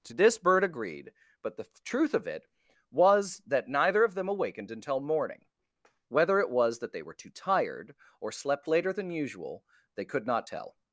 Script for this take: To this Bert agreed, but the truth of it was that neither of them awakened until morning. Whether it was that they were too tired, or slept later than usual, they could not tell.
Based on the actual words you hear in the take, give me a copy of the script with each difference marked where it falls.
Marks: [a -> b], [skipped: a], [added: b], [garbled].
To this Bert agreed, but the truth of it was that neither of them awakened until morning. Whether it was that they were too tired, or slept later than usual, they could not tell.